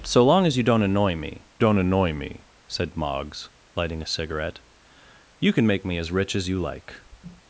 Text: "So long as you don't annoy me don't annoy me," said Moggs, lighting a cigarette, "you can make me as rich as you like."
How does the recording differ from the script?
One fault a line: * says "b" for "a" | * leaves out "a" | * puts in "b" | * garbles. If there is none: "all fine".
all fine